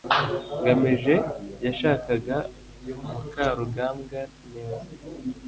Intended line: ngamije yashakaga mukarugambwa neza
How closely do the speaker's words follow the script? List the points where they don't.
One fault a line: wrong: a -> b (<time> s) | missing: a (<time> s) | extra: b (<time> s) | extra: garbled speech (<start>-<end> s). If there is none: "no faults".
no faults